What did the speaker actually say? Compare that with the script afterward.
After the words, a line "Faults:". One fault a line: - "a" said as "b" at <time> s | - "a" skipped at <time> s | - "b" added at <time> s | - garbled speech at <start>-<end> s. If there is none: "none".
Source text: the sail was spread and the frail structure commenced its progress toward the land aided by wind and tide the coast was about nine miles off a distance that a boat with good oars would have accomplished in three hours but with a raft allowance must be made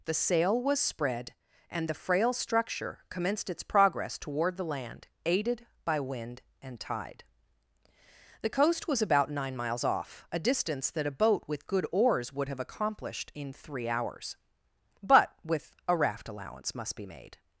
the sail was spread and the frail structure commenced its progress toward the land aided by wind and tide the coast was about nine miles off a distance that a boat with good oars would have accomplished in three hours but with a raft allowance must be made
Faults:
none